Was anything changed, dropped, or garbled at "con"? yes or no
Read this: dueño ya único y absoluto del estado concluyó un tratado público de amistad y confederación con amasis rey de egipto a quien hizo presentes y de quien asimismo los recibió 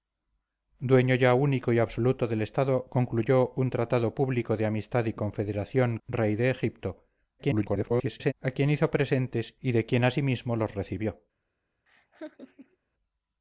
yes